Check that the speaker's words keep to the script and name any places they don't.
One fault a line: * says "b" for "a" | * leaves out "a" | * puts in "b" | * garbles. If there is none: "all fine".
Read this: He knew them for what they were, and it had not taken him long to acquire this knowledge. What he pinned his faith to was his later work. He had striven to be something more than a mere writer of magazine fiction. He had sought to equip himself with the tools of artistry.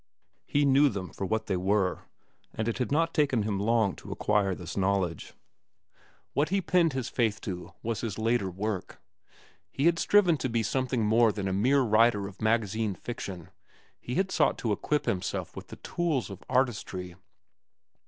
all fine